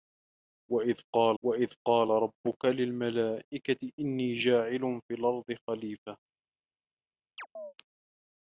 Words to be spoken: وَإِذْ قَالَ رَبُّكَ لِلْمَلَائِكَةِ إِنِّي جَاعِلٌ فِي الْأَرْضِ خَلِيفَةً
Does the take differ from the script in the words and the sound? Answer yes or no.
yes